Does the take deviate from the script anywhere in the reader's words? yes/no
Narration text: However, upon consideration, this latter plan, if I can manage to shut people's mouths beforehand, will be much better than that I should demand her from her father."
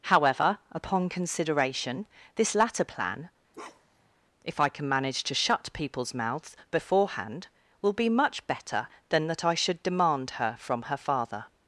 no